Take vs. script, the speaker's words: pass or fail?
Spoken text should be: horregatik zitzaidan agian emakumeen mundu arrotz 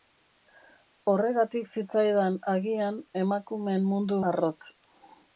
pass